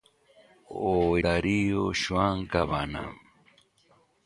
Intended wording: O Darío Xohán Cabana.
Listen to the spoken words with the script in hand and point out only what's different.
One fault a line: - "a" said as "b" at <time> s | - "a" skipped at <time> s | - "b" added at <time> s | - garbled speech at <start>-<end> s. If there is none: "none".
none